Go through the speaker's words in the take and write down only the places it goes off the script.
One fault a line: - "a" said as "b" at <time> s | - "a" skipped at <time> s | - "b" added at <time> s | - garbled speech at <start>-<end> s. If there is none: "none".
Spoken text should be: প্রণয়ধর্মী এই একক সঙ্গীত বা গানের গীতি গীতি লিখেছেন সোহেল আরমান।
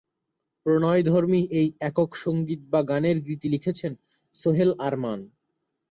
- "গীতি" skipped at 3.5 s